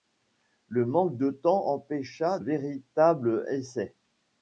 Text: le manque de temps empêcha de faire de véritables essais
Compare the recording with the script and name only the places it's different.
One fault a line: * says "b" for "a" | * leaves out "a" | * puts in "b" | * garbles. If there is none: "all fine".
* leaves out "de faire de"